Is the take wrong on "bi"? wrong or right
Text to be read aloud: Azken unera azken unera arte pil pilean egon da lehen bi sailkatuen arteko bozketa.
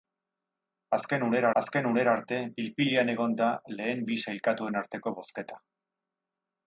right